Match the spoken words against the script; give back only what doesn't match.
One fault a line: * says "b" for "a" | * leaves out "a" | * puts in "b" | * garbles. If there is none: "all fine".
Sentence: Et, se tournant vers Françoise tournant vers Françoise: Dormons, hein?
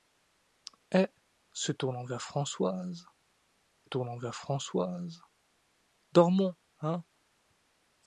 all fine